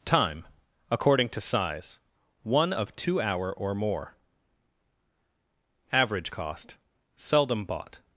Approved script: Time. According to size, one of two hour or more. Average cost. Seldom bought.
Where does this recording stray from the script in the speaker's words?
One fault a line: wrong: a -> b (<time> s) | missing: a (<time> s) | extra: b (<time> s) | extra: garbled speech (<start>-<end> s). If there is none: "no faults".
no faults